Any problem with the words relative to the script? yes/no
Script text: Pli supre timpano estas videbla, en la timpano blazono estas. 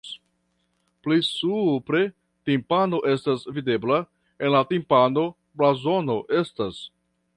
no